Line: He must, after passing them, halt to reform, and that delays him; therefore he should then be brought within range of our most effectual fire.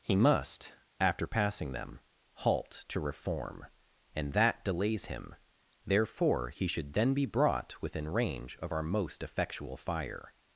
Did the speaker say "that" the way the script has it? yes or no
yes